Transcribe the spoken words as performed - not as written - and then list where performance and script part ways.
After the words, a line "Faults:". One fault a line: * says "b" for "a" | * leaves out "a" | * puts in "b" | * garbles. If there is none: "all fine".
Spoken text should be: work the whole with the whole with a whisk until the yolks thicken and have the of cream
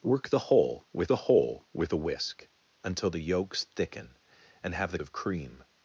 work the whole with the whole with a whisk until the yolks thicken and have the of cream
Faults:
all fine